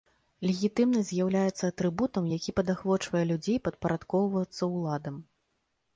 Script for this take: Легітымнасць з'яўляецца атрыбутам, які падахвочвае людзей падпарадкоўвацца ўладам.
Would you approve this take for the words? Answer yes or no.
yes